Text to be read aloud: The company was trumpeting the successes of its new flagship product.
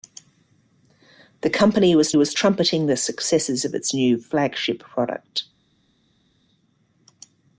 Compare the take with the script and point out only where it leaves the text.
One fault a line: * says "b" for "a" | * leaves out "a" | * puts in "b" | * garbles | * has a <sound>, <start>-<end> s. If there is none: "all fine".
* puts in "was"